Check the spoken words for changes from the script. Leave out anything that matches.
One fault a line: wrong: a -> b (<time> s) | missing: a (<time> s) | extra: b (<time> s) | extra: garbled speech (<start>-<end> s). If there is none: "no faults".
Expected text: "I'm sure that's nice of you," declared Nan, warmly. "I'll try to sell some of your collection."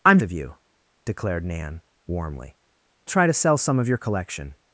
missing: sure that's nice (0.2 s)
missing: I'll (2.6 s)